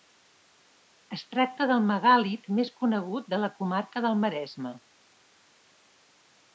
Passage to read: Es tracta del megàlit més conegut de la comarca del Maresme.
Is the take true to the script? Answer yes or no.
yes